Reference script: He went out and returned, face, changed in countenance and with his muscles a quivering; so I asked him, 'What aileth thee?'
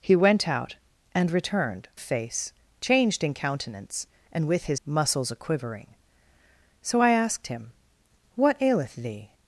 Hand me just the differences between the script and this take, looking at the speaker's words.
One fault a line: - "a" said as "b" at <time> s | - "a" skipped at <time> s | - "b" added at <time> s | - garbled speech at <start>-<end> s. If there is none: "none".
none